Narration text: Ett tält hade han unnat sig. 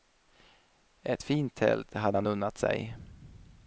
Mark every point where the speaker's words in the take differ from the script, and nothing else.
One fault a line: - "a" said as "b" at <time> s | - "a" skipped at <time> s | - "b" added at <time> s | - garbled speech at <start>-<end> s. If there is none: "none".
- "fint" added at 1.2 s